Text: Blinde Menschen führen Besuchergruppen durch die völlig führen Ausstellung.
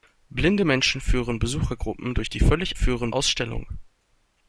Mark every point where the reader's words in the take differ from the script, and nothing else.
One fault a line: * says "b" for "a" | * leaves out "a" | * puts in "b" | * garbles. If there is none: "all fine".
all fine